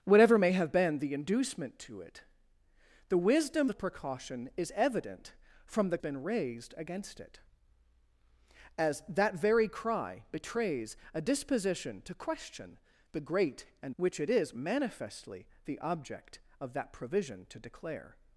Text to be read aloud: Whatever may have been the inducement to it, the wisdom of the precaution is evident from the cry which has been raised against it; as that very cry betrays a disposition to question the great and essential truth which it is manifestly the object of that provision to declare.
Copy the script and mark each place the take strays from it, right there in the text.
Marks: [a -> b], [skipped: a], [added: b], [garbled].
Whatever may have been the inducement to it, the wisdom [skipped: of] the precaution is evident from the [skipped: cry which has] been raised against it; as that very cry betrays a disposition to question the great and [skipped: essential truth] which it is manifestly the object of that provision to declare.